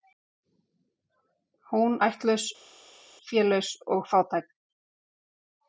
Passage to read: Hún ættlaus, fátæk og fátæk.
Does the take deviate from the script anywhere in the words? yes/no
yes